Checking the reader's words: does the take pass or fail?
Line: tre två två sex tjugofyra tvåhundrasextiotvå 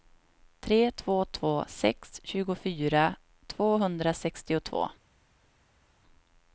pass